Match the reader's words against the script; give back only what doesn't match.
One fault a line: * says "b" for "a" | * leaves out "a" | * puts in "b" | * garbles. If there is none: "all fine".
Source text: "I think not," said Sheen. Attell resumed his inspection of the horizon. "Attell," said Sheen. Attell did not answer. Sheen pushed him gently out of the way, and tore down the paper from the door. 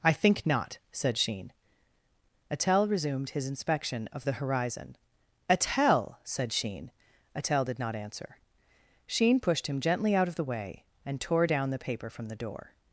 all fine